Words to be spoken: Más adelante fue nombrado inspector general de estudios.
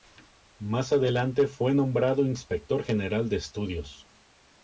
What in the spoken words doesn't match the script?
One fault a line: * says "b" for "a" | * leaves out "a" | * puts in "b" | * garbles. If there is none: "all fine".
all fine